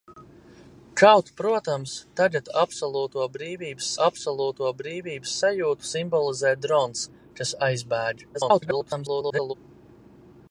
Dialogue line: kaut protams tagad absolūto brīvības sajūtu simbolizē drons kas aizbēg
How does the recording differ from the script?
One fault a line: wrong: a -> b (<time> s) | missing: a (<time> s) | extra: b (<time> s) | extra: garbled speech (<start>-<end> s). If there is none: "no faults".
extra: absolūto brīvības (4.1 s)
extra: garbled speech (8.3-9.5 s)